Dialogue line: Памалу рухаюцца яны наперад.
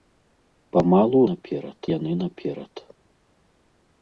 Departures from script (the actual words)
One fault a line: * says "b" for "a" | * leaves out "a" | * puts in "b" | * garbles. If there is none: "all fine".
* says "наперад" for "рухаюцца"